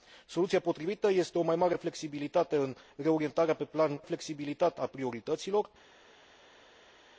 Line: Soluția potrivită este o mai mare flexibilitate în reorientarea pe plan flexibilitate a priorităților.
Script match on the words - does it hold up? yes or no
yes